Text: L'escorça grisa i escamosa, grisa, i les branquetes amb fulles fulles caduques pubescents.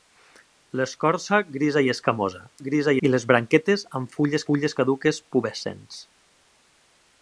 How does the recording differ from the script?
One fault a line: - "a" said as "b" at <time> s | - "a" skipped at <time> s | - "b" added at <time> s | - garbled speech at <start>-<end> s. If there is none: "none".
none